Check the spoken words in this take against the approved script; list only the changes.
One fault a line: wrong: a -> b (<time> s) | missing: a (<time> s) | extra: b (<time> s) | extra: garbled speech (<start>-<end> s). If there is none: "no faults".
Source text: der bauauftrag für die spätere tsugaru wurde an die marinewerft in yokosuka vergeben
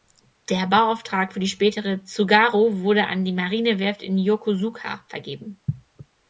no faults